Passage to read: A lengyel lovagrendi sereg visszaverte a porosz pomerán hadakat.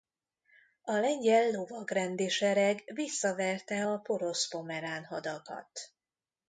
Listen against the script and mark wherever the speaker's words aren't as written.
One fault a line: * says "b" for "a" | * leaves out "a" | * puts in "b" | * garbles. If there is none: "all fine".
all fine